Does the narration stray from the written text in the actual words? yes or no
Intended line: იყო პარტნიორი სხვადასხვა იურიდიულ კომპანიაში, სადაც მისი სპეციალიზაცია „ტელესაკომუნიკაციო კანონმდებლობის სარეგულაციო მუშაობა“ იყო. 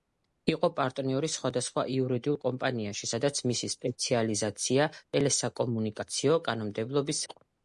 yes